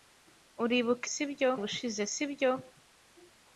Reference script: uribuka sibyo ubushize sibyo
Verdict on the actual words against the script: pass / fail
pass